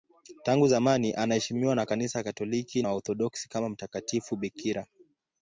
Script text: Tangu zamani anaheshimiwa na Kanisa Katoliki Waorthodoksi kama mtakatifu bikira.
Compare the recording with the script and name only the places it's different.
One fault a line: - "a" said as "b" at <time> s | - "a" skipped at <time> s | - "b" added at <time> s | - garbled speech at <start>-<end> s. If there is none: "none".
none